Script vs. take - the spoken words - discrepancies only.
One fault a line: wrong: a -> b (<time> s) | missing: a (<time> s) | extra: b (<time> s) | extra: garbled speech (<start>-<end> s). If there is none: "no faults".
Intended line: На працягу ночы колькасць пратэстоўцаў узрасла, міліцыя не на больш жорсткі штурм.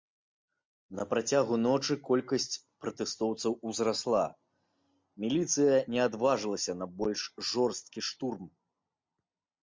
extra: адважылася (6.1 s)